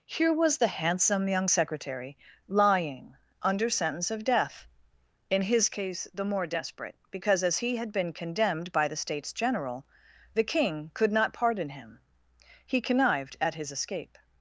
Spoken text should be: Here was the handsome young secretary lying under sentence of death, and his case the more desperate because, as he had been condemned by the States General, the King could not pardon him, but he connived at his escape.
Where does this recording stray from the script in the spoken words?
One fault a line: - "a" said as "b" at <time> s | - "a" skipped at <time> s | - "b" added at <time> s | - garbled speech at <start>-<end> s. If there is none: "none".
- "and" said as "in" at 5.3 s
- "but" skipped at 12.0 s